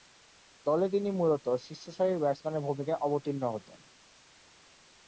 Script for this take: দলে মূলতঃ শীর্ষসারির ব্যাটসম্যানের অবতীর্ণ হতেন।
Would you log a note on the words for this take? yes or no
yes